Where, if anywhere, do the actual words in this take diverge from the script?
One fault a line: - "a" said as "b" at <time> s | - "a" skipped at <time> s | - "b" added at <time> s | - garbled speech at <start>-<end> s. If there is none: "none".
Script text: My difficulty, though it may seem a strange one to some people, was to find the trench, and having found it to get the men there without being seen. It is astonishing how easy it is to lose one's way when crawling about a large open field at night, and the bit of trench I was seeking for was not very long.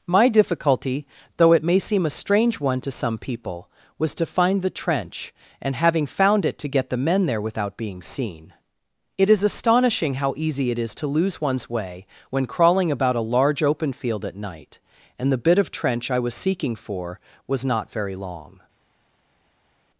none